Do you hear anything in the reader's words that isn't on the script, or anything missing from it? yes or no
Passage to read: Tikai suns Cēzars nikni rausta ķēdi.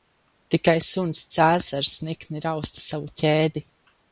yes